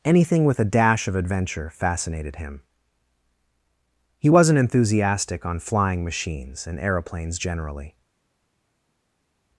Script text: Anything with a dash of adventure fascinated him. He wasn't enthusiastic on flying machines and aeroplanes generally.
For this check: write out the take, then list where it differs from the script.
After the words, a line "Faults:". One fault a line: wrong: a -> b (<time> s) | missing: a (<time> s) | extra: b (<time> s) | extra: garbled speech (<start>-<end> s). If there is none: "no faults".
Anything with a dash of adventure fascinated him. He wasn't enthusiastic on flying machines and aeroplanes generally.
Faults:
no faults